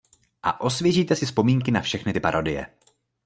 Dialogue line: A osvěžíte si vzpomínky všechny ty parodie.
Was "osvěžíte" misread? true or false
false